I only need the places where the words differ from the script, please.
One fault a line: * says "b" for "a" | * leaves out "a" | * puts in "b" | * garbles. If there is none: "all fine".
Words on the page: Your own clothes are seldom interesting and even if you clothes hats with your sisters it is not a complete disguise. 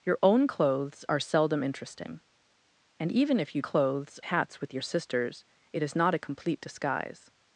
all fine